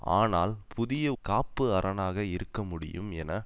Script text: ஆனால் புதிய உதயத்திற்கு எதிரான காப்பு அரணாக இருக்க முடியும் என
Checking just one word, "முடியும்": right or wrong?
right